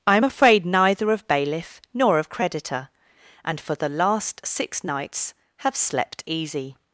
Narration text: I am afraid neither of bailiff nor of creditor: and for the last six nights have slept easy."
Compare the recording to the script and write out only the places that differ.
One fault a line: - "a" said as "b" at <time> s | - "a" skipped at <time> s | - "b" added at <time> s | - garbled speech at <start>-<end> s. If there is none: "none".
none